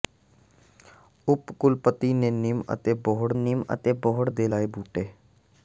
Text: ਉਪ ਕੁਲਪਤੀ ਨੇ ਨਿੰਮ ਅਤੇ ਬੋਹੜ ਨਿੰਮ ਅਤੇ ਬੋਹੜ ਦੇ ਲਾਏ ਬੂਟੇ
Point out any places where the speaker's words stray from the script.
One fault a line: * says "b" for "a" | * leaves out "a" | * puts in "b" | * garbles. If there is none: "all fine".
all fine